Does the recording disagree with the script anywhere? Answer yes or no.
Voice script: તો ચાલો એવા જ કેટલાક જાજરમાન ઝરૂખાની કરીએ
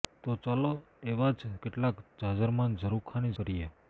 no